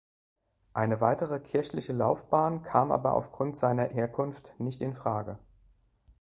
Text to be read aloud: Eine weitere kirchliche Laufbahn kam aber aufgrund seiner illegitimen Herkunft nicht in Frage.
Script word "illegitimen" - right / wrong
wrong